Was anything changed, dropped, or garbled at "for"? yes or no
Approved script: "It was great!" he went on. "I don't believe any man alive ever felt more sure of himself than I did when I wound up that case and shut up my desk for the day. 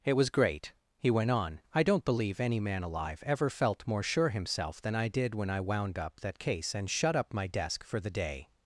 no